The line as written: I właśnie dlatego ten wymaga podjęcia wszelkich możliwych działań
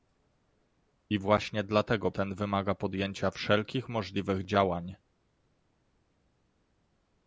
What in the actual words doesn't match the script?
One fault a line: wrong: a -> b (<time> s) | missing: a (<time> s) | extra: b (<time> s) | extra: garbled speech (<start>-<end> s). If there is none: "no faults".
no faults